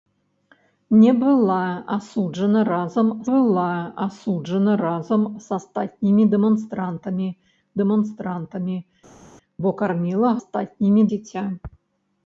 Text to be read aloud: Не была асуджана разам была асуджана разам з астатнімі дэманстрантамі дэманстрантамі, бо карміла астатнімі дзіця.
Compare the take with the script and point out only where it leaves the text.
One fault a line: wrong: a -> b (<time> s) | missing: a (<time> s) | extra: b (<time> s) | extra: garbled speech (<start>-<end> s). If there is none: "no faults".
no faults